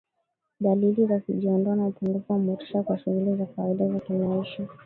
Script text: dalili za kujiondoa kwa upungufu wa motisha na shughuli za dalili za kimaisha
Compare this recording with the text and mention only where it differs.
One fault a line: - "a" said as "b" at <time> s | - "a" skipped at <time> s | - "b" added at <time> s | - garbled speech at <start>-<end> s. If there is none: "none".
- "kwa" said as "na" at 1.8 s
- "na" said as "kwa" at 2.8 s
- "dalili" said as "kawaida" at 3.5 s